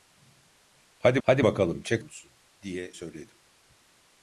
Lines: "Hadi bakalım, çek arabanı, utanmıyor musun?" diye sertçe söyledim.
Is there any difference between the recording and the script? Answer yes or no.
yes